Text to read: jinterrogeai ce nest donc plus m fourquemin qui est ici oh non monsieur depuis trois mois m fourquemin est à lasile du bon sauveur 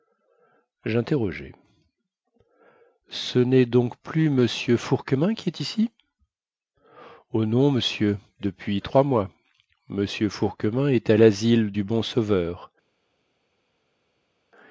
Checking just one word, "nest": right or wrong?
right